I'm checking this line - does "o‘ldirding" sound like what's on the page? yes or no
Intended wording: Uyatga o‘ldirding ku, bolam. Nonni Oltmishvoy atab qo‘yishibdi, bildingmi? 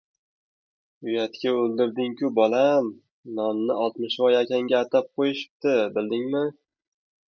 yes